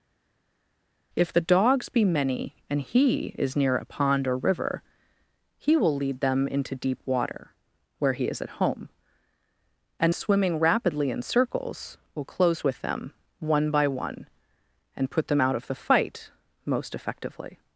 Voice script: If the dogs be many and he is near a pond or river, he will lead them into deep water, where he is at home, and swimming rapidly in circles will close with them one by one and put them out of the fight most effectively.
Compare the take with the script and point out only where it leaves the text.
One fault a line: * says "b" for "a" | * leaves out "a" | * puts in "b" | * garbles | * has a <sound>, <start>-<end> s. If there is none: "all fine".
all fine